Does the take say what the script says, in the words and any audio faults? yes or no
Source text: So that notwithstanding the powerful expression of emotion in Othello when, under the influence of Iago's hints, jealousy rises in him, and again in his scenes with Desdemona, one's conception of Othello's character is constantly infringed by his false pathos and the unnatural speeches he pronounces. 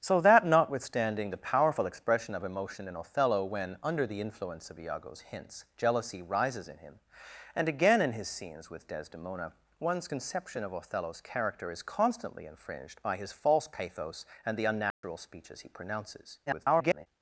no